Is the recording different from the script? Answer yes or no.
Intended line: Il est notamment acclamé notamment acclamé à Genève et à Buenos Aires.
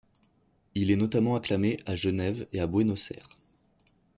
yes